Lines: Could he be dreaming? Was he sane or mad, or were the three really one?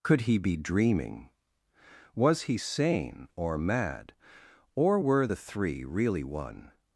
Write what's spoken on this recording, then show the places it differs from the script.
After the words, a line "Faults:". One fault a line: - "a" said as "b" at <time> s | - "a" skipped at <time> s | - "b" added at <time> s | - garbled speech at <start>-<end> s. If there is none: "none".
Could he be dreaming? Was he sane or mad, or were the three really one?
Faults:
none